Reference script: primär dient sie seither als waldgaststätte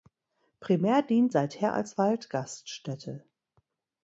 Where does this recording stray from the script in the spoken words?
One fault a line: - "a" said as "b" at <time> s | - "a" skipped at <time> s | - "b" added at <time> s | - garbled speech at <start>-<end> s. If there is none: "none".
- "sie" skipped at 1.4 s